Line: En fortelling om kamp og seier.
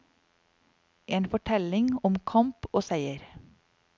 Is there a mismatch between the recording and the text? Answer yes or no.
no